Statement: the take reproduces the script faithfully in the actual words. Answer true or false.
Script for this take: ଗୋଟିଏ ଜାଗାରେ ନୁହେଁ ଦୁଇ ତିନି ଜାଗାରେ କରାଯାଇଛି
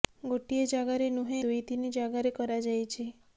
true